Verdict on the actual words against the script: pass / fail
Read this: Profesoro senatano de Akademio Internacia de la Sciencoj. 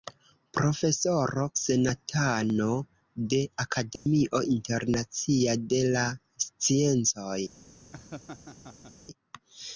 pass